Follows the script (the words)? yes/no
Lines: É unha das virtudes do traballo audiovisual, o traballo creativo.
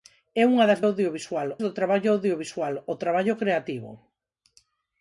no